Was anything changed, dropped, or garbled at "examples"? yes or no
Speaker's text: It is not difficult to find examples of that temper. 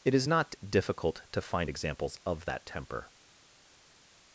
no